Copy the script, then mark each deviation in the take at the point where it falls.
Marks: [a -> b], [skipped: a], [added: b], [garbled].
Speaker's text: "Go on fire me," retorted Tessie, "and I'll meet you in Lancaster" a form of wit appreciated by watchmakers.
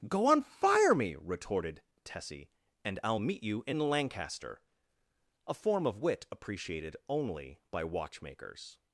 "Go on fire me," retorted Tessie, "and I'll meet you in Lancaster" a form of wit appreciated [added: only] by watchmakers.